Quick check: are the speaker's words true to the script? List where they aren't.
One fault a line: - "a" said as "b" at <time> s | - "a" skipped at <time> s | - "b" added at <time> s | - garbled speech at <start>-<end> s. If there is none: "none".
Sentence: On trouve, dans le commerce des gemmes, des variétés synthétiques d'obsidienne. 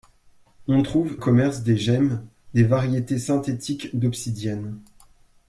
- "dans le" skipped at 1.2 s